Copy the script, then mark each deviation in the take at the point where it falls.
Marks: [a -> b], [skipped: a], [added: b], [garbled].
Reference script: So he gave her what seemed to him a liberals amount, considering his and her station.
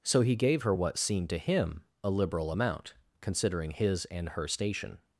So he gave her what seemed to him a [liberals -> liberal] amount, considering his and her station.